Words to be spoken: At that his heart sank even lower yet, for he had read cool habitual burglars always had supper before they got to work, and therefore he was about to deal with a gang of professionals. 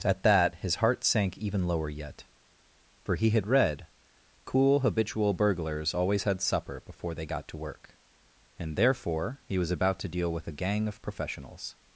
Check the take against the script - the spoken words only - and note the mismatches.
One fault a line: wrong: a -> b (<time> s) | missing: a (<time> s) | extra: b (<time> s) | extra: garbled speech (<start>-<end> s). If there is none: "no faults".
no faults